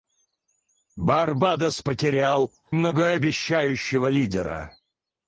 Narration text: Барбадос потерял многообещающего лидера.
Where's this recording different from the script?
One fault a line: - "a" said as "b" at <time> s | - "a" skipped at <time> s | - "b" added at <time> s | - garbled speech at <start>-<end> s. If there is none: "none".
none